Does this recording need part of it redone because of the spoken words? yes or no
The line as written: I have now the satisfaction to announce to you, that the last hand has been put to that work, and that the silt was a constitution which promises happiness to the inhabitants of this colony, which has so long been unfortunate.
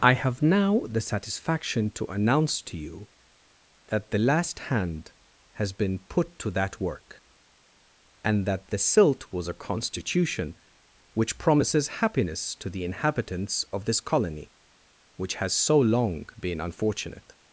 no